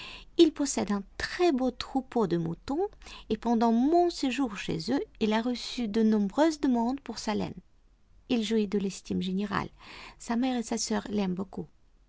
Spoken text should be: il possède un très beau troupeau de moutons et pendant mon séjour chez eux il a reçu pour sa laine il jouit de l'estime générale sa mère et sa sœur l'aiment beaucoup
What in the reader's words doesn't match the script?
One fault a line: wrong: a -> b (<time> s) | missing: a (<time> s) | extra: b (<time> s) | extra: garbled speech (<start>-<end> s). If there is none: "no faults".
extra: de nombreuses demandes (5.9 s)